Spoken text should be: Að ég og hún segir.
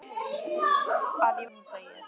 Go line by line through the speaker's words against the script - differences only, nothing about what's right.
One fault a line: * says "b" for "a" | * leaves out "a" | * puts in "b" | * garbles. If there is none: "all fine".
all fine